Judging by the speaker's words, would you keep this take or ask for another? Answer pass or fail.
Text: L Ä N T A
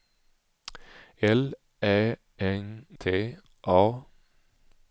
pass